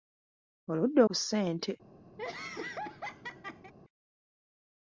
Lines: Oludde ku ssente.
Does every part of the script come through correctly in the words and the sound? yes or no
no